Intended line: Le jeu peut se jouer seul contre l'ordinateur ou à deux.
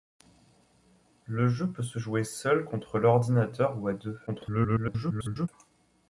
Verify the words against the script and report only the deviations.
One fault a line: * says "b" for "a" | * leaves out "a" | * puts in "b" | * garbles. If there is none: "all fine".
* garbles